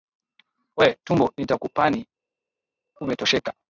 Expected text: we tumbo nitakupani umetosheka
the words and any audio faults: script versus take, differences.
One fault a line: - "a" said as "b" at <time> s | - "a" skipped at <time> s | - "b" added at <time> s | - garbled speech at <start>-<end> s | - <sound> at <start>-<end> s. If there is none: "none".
none